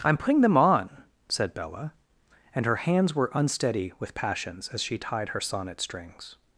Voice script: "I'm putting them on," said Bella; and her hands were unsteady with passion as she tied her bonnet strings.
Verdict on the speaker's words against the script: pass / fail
fail